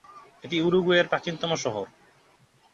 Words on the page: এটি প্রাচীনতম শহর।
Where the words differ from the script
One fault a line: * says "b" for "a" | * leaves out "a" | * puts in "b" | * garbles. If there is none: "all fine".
* puts in "উরুগুয়ের"